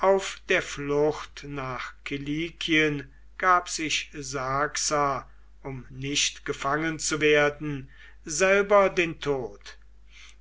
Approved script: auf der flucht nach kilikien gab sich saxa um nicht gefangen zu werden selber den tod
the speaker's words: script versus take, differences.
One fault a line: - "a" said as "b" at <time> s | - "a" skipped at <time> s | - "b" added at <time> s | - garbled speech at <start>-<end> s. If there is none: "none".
none